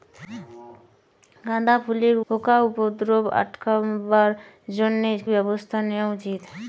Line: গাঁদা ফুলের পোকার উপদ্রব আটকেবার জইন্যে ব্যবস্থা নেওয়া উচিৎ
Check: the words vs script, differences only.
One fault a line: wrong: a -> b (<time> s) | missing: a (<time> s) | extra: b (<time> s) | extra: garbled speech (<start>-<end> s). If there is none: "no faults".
no faults